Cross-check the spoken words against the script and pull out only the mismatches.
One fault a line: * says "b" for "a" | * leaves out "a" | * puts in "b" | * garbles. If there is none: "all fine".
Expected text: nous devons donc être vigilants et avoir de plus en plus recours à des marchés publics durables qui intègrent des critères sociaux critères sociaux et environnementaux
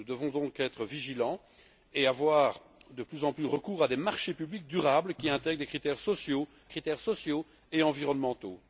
all fine